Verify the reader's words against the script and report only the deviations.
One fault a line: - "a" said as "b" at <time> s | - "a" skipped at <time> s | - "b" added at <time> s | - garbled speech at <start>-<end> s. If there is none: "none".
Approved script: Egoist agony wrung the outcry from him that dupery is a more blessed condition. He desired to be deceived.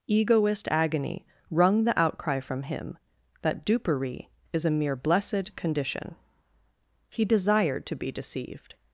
- "more" said as "mere" at 4.7 s